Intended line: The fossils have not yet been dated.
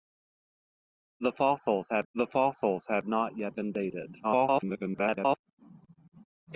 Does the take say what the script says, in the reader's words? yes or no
no